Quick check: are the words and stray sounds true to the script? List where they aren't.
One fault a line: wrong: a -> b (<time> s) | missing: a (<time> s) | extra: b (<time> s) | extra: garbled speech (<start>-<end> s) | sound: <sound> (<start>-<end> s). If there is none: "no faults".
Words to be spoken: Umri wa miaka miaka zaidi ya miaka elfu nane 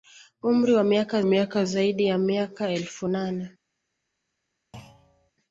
sound: thud (4.7-5.3 s)